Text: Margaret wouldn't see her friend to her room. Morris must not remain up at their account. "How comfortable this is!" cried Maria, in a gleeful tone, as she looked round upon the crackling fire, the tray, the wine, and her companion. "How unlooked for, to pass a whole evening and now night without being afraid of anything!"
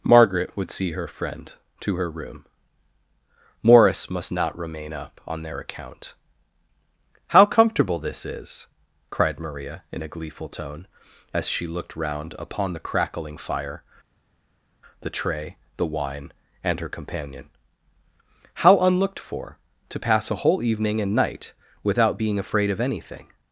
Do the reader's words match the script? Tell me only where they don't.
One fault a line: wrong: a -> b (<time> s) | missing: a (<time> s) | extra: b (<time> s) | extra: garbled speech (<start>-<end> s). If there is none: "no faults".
wrong: wouldn't -> would (0.6 s)
wrong: at -> on (5.3 s)
missing: now (21.1 s)